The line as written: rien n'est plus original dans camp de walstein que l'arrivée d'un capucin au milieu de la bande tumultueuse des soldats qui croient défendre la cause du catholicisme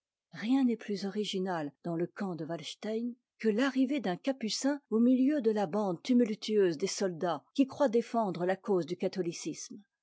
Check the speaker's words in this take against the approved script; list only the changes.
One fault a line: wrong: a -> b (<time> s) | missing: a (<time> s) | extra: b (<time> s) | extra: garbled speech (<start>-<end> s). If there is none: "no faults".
extra: le (1.9 s)